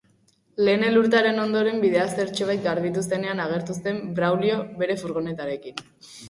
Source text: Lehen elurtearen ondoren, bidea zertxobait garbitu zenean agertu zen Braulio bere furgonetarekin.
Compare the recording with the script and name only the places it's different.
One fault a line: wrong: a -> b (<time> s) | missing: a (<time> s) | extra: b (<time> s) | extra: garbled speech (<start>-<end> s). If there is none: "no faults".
no faults